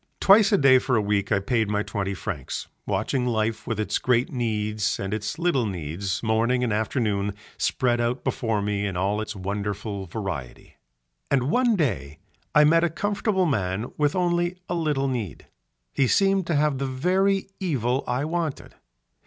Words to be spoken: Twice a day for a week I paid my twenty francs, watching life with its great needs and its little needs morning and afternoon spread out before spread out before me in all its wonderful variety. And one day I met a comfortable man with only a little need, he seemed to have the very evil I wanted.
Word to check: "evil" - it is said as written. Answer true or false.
true